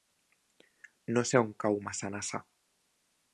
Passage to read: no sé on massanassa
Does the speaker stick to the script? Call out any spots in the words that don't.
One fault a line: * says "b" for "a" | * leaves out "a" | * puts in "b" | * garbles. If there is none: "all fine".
* puts in "cau"